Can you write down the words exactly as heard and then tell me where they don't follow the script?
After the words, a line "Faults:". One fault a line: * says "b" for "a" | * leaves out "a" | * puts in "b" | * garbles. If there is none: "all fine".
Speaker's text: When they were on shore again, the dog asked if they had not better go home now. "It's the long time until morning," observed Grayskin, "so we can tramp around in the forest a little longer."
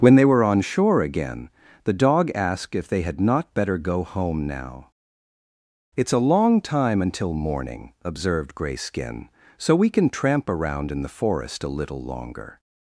When they were on shore again, the dog asked if they had not better go home now. "It's a long time until morning," observed Grayskin, "so we can tramp around in the forest a little longer."
Faults:
* says "a" for "the"